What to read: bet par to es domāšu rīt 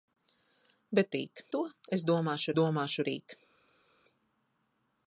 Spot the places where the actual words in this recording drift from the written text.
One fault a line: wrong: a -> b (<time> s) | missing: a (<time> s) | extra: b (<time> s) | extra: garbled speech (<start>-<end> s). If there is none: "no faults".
wrong: par -> rīt (1.2 s)
extra: domāšu (2.6 s)